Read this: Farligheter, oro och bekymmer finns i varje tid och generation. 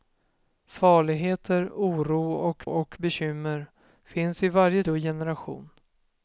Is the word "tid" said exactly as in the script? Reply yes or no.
no